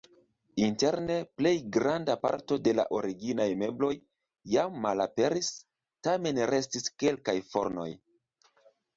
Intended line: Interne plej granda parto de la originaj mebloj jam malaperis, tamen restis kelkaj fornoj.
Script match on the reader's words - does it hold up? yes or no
yes